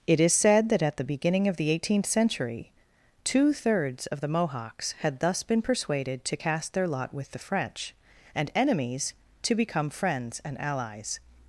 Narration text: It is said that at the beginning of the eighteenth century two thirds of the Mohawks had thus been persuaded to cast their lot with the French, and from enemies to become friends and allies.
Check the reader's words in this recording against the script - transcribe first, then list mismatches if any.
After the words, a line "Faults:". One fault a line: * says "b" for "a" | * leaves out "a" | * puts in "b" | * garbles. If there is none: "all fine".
It is said that at the beginning of the eighteenth century two thirds of the Mohawks had thus been persuaded to cast their lot with the French, and enemies to become friends and allies.
Faults:
* leaves out "from"